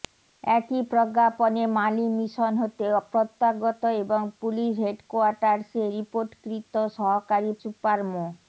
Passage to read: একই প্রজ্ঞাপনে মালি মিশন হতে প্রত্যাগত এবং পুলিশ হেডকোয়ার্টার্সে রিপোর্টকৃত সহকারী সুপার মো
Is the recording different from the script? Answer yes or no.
no